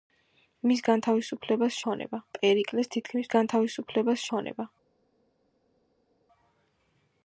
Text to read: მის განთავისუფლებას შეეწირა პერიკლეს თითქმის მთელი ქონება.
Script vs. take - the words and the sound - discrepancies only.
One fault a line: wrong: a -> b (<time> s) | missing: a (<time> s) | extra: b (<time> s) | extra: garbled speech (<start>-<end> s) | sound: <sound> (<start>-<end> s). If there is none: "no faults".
wrong: შეეწირა -> ქონება (1.8 s)
wrong: მთელი -> განთავისუფლებას (3.3 s)